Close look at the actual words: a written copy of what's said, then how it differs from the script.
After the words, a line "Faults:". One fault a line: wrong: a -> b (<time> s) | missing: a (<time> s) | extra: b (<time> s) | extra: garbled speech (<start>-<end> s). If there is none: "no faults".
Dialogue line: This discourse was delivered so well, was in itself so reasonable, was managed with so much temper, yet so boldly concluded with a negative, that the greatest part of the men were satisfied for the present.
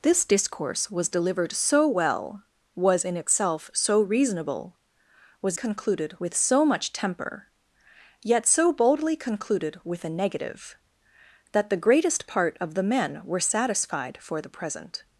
This discourse was delivered so well, was in itself so reasonable, was concluded with so much temper, yet so boldly concluded with a negative, that the greatest part of the men were satisfied for the present.
Faults:
wrong: managed -> concluded (5.5 s)